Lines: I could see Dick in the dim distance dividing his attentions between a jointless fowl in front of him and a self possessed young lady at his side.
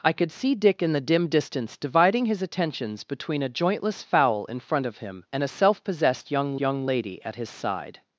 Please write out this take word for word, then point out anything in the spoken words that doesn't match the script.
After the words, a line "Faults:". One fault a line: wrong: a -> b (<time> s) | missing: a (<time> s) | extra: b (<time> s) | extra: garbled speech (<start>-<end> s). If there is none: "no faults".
I could see Dick in the dim distance dividing his attentions between a jointless fowl in front of him and a self possessed young young lady at his side.
Faults:
extra: young (6.6 s)